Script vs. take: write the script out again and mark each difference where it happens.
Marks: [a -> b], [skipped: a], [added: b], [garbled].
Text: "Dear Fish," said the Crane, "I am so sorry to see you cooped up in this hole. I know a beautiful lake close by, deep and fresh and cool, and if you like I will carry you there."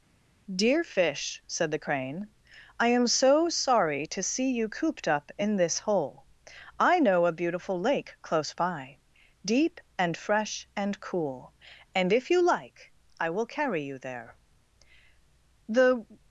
"Dear Fish," said the Crane, "I am so sorry to see you cooped up in this hole. I know a beautiful lake close by, deep and fresh and cool, and if you like I will carry you there." [added: The]